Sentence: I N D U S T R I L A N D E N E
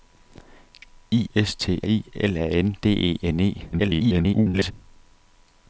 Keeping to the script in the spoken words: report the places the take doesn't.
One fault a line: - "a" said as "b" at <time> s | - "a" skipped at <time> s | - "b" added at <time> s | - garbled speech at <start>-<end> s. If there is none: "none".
- "N D U" skipped at 1.3 s
- "R" skipped at 1.8 s
- garbled speech at 3.7-4.7 s